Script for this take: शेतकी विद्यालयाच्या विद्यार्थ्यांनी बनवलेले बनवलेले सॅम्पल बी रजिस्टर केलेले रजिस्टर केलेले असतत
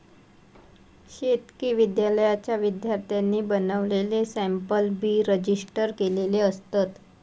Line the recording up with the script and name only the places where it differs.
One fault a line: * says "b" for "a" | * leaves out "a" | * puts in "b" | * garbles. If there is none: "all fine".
* leaves out "बनवलेले"
* leaves out "रजिस्टर केलेले"